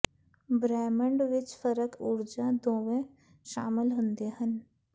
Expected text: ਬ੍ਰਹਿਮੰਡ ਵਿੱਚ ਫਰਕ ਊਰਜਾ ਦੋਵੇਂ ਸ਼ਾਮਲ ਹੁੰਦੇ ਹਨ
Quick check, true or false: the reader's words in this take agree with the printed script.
true